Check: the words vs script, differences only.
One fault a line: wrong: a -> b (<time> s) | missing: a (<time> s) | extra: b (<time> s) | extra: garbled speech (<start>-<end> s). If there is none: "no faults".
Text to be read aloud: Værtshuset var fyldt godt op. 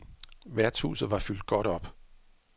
no faults